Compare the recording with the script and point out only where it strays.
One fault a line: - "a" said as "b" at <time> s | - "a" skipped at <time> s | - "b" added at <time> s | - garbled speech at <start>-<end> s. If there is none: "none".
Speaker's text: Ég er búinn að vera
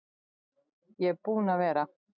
none